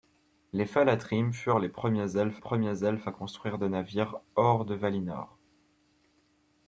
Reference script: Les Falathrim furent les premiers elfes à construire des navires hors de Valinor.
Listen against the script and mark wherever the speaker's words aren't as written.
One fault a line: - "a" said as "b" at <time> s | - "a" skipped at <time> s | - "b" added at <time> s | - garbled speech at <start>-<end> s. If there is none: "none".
- "premiers elfes" added at 2.4 s